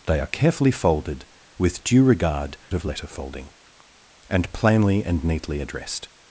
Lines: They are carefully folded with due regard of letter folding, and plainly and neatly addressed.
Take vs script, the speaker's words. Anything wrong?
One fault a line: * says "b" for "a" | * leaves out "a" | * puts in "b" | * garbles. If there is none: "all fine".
all fine